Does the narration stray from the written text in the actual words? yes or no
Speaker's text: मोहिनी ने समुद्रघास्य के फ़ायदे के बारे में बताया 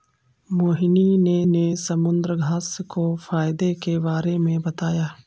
yes